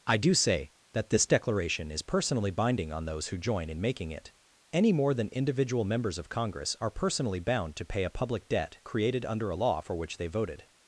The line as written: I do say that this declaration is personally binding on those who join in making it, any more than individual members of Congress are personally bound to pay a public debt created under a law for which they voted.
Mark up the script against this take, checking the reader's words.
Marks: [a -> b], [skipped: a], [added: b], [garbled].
I do say that this declaration is personally binding on those who join in making it, any more than individual members of Congress are personally bound to pay a public debt created under a law for which they voted.